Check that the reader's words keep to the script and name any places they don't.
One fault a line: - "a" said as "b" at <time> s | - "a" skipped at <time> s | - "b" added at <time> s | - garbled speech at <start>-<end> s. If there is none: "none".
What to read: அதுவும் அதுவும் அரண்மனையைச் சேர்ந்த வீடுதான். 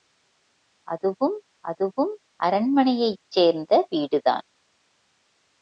none